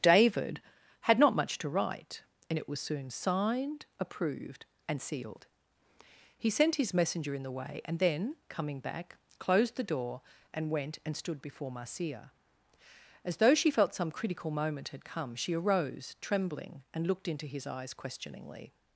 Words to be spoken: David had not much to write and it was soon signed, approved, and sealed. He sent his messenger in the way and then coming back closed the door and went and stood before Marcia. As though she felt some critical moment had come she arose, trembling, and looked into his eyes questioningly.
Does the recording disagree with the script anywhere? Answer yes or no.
no